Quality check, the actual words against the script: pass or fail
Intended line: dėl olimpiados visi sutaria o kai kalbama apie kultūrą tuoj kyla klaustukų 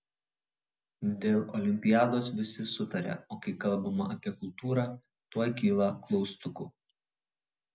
pass